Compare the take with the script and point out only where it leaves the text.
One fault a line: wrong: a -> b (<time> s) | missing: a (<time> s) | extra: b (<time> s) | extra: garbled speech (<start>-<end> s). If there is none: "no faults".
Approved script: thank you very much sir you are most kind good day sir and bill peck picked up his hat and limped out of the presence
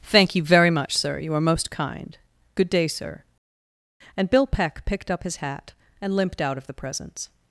no faults